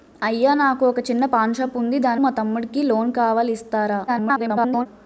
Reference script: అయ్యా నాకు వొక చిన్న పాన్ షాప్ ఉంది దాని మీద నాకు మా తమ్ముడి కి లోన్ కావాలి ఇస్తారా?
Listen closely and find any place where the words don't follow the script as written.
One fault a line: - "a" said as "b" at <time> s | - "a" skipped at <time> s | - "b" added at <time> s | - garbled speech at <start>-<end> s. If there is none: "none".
- "మీద నాకు" skipped at 2.2 s
- garbled speech at 4.1-4.9 s